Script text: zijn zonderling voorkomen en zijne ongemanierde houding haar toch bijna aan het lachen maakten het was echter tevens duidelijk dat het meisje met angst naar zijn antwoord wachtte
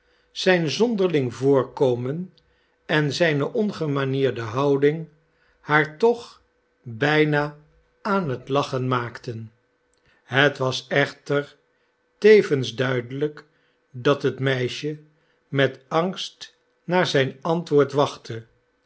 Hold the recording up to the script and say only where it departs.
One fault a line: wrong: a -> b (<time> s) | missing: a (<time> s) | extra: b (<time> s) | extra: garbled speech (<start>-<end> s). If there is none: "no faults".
no faults